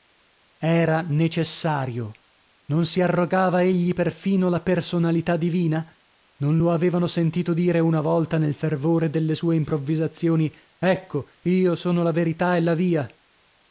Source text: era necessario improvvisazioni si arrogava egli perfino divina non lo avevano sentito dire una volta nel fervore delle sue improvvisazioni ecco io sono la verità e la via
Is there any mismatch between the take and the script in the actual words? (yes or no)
yes